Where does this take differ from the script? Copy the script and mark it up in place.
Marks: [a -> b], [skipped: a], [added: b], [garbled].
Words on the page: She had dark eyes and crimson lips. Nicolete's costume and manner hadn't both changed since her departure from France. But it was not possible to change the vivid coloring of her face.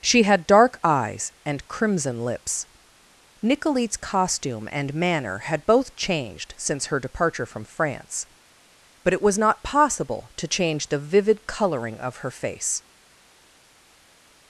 She had dark eyes and crimson lips. Nicolete's costume and manner [hadn't -> had] both changed since her departure from France. But it was not possible to change the vivid coloring of her face.